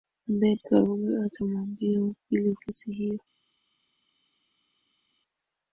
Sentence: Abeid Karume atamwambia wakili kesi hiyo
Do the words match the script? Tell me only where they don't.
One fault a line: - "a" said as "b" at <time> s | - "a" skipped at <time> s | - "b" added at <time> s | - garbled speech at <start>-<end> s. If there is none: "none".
none